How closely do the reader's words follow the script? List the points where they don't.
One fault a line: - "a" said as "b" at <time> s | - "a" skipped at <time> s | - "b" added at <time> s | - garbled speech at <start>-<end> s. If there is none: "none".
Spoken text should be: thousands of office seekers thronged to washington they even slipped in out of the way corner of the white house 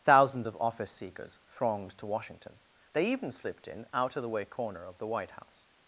none